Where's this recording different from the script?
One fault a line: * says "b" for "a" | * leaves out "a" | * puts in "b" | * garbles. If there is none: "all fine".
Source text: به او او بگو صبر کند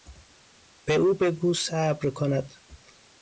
* leaves out "او"